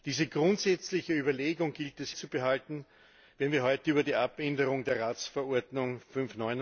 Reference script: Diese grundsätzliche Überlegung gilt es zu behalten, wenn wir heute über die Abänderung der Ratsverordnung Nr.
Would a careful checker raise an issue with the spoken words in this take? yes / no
no